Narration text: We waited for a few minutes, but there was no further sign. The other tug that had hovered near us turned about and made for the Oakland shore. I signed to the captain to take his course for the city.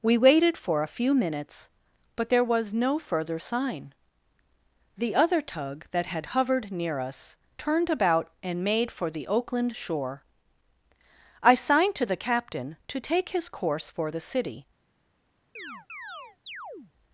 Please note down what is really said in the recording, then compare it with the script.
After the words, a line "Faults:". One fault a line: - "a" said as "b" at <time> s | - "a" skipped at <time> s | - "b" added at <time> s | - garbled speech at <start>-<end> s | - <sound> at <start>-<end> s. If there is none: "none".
We waited for a few minutes, but there was no further sign. The other tug that had hovered near us turned about and made for the Oakland shore. I signed to the captain to take his course for the city.
Faults:
- chirp at 15.6-16.9 s